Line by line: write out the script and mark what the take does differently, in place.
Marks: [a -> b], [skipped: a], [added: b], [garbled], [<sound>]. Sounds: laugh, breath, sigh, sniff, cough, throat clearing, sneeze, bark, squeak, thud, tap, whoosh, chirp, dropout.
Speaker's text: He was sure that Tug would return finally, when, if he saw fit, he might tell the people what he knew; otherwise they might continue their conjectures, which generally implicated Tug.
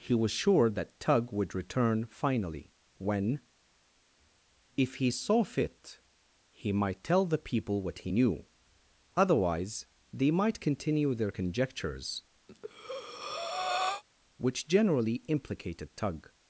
He was sure that Tug would return finally, when, if he saw fit, he might tell the people what he knew; otherwise they might continue their conjectures, [breath] which generally implicated Tug.